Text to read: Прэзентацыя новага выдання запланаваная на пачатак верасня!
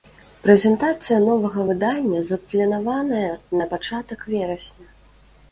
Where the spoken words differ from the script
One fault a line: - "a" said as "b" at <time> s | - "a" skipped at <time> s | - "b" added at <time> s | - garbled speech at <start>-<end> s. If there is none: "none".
none